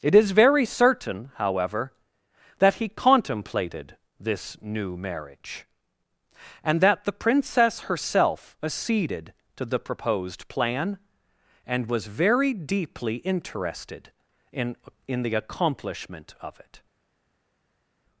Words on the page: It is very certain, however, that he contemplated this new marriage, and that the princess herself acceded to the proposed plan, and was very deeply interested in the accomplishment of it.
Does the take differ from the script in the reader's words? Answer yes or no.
yes